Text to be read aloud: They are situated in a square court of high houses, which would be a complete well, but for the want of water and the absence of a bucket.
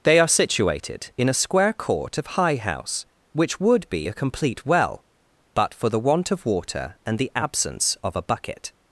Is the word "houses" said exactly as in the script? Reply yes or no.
no